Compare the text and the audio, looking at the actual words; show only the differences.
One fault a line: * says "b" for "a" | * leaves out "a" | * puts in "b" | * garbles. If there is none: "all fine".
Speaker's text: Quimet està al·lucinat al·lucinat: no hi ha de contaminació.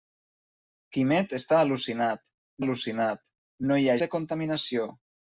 all fine